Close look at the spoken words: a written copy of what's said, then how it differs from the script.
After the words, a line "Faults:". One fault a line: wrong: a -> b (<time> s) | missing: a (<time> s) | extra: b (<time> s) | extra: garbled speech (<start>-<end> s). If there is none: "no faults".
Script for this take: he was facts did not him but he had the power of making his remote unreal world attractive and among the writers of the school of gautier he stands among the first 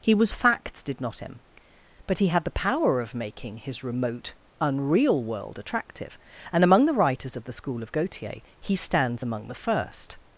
he was facts did not him but he had the power of making his remote unreal world attractive and among the writers of the school of gautier he stands among the first
Faults:
no faults